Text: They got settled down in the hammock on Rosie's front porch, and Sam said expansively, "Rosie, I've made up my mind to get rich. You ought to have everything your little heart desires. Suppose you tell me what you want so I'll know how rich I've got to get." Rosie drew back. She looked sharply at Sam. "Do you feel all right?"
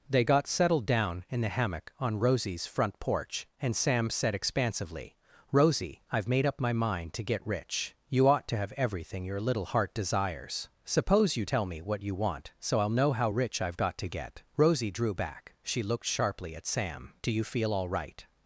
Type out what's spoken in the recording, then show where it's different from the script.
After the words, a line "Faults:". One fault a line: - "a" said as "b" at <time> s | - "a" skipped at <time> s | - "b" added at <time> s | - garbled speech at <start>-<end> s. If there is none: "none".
They got settled down in the hammock on Rosie's front porch, and Sam said expansively, "Rosie, I've made up my mind to get rich. You ought to have everything your little heart desires. Suppose you tell me what you want so I'll know how rich I've got to get." Rosie drew back. She looked sharply at Sam. "Do you feel all right?"
Faults:
none